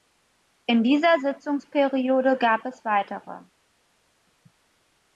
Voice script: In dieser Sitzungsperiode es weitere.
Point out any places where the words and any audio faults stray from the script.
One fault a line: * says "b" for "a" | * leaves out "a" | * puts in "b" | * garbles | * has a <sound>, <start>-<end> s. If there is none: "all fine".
* puts in "gab"